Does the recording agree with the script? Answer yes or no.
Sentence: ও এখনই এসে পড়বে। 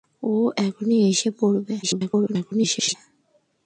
no